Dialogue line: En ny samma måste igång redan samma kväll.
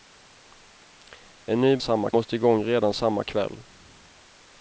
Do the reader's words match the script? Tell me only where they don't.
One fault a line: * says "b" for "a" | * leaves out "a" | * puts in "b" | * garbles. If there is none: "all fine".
all fine